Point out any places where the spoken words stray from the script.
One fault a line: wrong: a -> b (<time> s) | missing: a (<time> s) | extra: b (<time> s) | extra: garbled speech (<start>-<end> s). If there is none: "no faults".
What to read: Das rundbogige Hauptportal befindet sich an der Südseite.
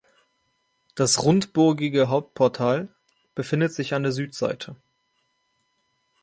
no faults